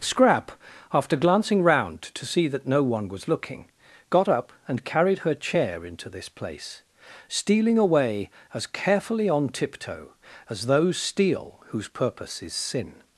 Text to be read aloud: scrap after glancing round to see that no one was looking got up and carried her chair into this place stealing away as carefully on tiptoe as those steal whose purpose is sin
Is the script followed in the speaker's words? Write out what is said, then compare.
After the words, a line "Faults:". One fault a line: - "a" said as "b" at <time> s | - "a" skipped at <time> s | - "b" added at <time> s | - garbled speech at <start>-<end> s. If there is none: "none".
scrap after glancing round to see that no one was looking got up and carried her chair into this place stealing away as carefully on tiptoe as those steal whose purpose is sin
Faults:
none